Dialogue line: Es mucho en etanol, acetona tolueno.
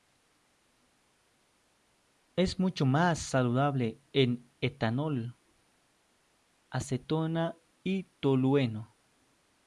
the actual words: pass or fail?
fail